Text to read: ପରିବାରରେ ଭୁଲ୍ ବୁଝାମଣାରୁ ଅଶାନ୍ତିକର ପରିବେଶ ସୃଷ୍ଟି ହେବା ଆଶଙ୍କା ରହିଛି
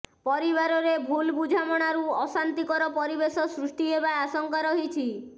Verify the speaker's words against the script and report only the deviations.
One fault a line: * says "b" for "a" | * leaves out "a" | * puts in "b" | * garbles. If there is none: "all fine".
all fine